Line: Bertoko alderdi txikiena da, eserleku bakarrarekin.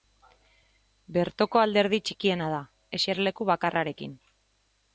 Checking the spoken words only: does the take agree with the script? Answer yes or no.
yes